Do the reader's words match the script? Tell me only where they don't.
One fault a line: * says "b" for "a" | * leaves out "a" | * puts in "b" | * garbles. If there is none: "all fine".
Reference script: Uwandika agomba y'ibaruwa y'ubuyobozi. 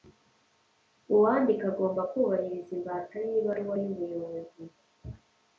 * puts in "kubahiriza imbata"